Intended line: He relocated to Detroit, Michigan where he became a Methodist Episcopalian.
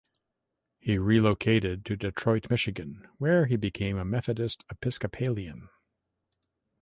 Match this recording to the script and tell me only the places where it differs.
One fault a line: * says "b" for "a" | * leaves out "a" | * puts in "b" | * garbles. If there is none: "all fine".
all fine